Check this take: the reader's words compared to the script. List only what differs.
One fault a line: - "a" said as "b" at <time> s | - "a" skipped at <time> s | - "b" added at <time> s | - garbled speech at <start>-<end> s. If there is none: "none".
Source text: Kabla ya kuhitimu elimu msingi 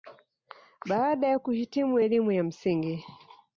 - "Kabla" said as "Baada" at 0.9 s
- "ya" added at 2.3 s